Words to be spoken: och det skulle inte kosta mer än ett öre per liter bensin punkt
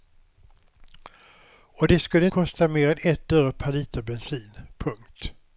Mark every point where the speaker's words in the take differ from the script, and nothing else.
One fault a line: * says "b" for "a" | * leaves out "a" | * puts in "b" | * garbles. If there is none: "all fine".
* leaves out "inte"